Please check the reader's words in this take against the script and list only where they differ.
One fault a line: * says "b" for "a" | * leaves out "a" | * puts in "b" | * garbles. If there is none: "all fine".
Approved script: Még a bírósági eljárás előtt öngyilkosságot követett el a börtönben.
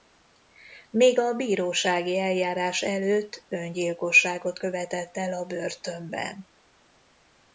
all fine